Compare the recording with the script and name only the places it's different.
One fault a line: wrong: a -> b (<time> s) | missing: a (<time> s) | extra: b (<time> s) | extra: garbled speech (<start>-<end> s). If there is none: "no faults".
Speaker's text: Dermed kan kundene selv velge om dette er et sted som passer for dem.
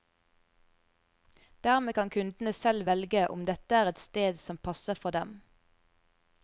no faults